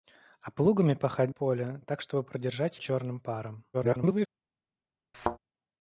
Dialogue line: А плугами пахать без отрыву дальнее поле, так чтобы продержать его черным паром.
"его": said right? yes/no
no